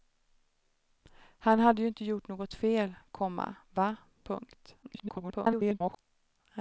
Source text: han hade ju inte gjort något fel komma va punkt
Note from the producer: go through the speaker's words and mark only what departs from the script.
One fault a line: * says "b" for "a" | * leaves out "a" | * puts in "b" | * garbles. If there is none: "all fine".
* garbles